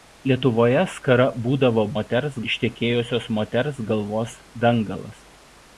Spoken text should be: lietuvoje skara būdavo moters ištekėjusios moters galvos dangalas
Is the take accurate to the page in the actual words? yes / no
yes